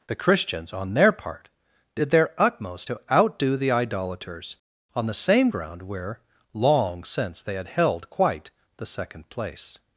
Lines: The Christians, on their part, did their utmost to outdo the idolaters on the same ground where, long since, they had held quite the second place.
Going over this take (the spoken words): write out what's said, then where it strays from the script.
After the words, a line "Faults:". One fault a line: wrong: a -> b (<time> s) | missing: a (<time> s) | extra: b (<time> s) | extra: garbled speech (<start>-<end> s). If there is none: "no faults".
The Christians, on their part, did their utmost to outdo the idolaters on the same ground where, long since, they had held quite the second place.
Faults:
no faults